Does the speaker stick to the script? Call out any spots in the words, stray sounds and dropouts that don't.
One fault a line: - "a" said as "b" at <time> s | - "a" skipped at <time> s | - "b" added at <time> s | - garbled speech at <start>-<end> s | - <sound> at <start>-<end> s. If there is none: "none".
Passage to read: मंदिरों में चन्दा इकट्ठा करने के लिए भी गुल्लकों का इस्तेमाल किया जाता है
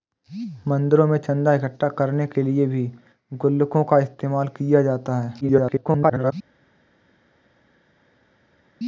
- garbled speech at 5.4-6.3 s